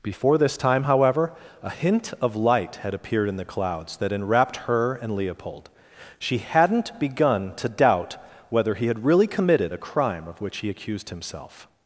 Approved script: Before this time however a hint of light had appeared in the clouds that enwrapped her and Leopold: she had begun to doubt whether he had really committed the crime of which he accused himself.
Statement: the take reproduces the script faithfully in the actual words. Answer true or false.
false